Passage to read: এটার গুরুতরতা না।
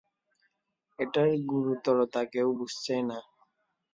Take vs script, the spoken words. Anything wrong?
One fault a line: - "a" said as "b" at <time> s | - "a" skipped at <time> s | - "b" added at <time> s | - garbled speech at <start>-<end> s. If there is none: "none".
- "কেউ বুঝছেই" added at 2.3 s